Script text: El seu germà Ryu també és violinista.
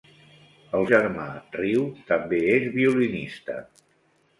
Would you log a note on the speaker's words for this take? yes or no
yes